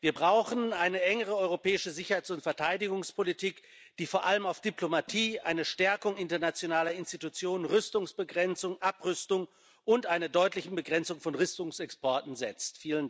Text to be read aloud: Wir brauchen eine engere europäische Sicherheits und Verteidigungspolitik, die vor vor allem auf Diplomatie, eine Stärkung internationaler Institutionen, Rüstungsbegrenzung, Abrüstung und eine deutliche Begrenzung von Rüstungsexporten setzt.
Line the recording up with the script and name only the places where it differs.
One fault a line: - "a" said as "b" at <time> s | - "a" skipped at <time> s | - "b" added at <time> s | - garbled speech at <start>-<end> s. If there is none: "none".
- "vor" skipped at 4.2 s